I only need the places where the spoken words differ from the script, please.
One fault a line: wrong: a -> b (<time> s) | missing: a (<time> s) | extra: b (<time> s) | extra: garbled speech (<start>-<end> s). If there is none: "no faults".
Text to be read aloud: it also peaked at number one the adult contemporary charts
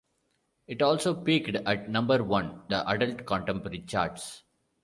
no faults